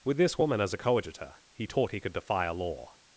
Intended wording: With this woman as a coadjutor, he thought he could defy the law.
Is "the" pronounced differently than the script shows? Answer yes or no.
yes